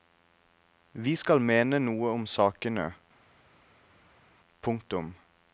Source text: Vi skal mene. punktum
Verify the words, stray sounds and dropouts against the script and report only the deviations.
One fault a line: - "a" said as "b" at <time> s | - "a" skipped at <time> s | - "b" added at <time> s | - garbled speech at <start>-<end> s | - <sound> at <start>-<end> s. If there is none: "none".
- "noe om sakene" added at 1.8 s